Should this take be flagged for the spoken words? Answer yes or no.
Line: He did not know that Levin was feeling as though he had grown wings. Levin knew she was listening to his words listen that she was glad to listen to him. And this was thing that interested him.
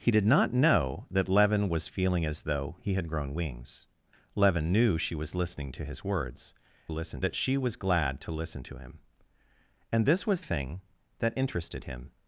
no